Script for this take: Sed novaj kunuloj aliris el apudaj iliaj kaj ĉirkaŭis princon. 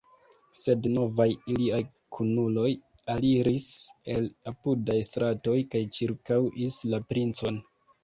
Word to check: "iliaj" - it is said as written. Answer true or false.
false